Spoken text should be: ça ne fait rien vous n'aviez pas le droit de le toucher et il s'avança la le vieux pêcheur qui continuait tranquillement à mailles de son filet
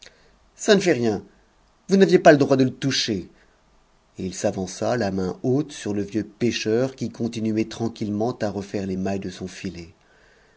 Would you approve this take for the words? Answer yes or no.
no